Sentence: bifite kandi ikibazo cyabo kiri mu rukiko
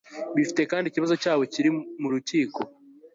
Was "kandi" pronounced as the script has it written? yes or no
yes